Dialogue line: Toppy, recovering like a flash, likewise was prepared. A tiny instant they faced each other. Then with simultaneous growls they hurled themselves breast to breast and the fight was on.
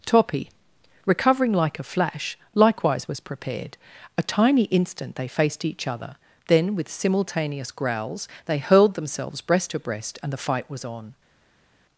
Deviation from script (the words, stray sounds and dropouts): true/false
false